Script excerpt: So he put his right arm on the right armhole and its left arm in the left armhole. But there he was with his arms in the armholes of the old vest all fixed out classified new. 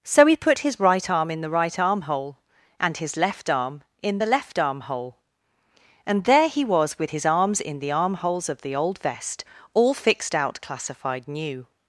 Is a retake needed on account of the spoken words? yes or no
yes